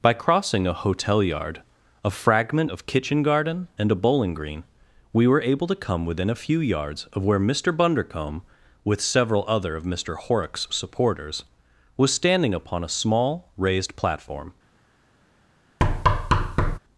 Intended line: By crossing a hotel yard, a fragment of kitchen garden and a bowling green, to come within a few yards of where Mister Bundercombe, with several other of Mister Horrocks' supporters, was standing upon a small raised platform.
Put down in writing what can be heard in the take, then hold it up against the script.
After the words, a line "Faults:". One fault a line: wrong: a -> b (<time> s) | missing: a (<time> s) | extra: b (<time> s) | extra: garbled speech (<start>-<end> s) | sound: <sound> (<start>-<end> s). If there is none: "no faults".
By crossing a hotel yard, a fragment of kitchen garden and a bowling green, we were able to come within a few yards of where Mister Bundercombe, with several other of Mister Horrocks' supporters, was standing upon a small raised platform.
Faults:
extra: we were able (5.1 s)
sound: thud (15.8-16.8 s)